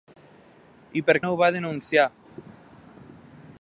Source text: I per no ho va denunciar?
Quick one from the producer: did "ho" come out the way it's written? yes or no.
yes